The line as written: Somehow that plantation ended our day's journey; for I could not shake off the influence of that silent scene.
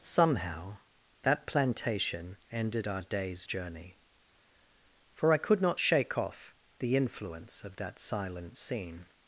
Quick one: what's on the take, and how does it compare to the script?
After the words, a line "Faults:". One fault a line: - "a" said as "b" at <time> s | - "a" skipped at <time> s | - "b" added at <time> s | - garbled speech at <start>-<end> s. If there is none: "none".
Somehow that plantation ended our day's journey; for I could not shake off the influence of that silent scene.
Faults:
none